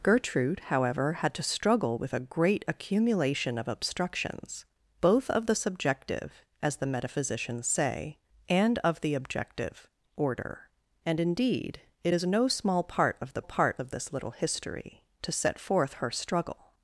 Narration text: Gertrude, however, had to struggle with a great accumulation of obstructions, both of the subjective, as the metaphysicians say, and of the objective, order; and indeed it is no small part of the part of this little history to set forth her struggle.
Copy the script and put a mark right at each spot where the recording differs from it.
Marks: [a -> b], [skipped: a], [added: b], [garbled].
Gertrude, however, had to struggle with a great accumulation of obstructions, both of the subjective, as the metaphysicians say, and of the objective, order; and indeed it is no small part of the part of this little history to set forth her struggle.